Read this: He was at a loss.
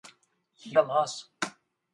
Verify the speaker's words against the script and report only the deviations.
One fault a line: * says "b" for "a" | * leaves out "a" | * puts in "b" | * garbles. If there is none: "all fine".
* leaves out "was at"